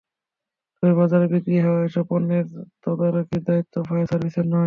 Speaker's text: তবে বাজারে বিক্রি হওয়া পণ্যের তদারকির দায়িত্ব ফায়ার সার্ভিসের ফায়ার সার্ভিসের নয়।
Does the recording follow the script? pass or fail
fail